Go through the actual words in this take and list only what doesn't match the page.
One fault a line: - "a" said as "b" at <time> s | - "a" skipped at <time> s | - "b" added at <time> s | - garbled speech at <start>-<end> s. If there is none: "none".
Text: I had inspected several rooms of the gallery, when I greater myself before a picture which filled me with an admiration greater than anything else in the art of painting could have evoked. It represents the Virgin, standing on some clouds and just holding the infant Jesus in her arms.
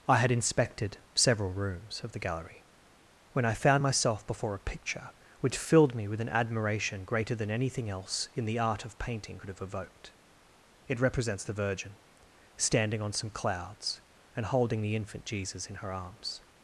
- "greater" said as "found" at 3.5 s
- "just" skipped at 14.5 s